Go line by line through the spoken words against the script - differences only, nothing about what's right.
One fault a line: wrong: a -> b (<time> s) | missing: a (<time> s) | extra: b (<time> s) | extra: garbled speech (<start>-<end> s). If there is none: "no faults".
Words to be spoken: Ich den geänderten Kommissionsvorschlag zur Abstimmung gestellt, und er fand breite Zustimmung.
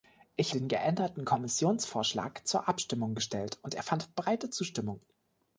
no faults